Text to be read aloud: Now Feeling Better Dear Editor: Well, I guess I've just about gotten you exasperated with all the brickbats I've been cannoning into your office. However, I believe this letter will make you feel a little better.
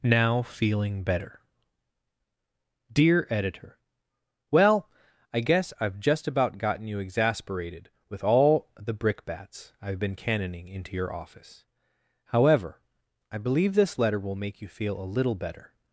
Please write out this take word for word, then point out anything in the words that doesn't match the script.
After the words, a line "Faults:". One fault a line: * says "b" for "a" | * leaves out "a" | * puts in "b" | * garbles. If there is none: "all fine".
Now Feeling Better Dear Editor: Well, I guess I've just about gotten you exasperated with all the brickbats I've been cannoning into your office. However, I believe this letter will make you feel a little better.
Faults:
all fine